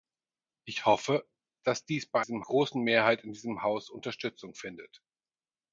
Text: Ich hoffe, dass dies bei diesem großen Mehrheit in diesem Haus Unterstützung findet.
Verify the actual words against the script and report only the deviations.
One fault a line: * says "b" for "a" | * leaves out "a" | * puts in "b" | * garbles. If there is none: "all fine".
all fine